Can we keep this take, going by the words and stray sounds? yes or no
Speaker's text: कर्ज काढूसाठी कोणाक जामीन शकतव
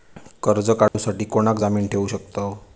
no